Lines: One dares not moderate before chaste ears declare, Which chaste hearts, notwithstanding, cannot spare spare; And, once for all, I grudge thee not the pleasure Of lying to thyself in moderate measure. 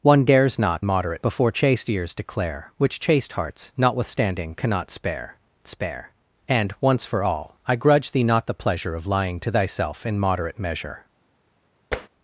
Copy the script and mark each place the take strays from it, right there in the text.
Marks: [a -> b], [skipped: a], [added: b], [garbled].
One dares not moderate before chaste ears declare, Which chaste hearts, notwithstanding, cannot spare spare; And, once for all, I grudge thee not the pleasure Of lying to thyself in moderate measure.